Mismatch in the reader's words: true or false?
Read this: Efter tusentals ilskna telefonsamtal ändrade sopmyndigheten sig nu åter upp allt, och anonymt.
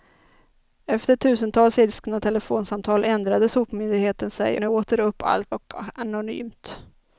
false